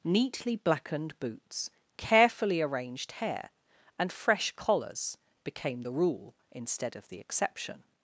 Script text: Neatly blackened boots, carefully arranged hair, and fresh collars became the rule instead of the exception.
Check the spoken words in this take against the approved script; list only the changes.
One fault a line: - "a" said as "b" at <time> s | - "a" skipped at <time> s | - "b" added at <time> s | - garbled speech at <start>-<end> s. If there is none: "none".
none